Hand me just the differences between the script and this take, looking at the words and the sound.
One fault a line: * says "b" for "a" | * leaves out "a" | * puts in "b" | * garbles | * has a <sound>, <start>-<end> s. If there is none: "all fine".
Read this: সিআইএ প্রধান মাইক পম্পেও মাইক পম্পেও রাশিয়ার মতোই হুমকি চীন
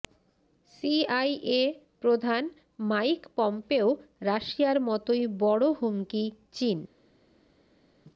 * leaves out "মাইক পম্পেও"
* puts in "বড়"